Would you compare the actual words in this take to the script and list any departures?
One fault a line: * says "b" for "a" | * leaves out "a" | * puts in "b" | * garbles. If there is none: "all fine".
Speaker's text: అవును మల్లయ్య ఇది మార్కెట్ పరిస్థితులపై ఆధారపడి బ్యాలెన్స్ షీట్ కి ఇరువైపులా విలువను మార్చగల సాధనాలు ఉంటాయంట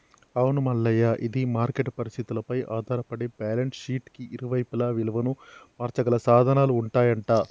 all fine